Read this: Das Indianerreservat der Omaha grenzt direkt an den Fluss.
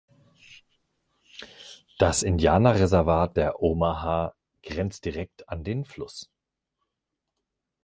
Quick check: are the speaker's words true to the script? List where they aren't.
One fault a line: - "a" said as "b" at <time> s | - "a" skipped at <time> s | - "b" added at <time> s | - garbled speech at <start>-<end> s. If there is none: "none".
none